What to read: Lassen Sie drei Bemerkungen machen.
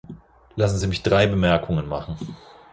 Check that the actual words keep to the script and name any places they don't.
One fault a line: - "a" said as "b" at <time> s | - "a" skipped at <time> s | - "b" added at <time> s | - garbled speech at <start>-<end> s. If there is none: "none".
- "mich" added at 0.9 s